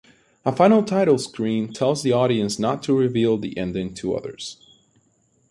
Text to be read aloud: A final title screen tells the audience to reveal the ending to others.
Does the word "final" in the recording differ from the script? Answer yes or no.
no